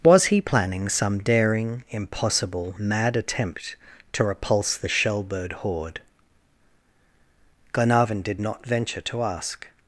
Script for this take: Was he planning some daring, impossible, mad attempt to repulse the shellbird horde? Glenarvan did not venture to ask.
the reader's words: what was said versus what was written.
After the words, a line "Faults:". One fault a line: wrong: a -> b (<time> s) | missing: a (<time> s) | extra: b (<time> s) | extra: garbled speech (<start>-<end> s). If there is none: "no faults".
Was he planning some daring, impossible, mad attempt to repulse the shellbird horde? Glenarvan did not venture to ask.
Faults:
no faults